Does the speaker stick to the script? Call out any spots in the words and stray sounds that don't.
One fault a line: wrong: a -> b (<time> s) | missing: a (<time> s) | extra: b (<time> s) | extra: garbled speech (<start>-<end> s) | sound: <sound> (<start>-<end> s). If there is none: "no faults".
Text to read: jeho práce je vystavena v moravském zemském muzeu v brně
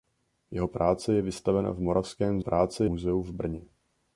wrong: zemském -> práce (2.4 s)